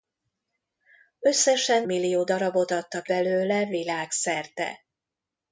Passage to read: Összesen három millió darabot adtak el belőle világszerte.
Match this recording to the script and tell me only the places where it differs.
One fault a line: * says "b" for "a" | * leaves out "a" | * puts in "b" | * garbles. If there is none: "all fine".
* leaves out "három"
* leaves out "el"